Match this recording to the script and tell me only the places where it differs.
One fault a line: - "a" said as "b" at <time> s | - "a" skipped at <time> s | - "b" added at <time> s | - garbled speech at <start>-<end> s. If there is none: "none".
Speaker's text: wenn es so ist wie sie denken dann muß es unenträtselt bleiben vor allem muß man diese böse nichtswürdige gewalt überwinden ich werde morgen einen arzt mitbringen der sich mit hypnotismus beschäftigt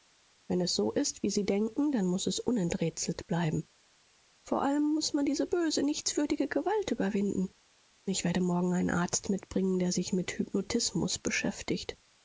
none